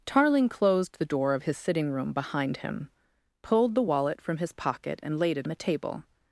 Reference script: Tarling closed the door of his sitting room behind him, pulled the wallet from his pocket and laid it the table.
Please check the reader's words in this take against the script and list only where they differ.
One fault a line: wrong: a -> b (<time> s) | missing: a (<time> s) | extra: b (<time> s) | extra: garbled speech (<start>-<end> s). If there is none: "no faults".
no faults